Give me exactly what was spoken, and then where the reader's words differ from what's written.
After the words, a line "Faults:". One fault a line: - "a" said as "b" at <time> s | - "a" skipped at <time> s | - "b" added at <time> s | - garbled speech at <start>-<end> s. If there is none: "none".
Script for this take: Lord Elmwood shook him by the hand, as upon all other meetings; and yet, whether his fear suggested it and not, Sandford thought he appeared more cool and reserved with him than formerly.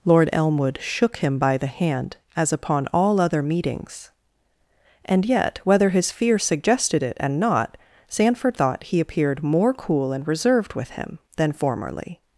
Lord Elmwood shook him by the hand, as upon all other meetings; and yet, whether his fear suggested it and not, Sandford thought he appeared more cool and reserved with him than formerly.
Faults:
none